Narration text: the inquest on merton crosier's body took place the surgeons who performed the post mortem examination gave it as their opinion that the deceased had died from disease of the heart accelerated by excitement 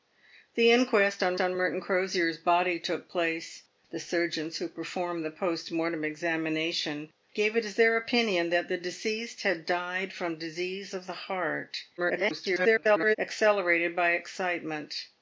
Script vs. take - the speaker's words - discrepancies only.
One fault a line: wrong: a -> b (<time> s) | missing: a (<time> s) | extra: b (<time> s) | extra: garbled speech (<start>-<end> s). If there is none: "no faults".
extra: on (1.4 s)
extra: garbled speech (12.0-13.2 s)